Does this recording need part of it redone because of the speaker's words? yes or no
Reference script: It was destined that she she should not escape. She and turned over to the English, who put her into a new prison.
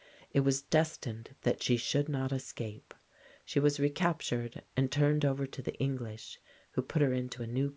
yes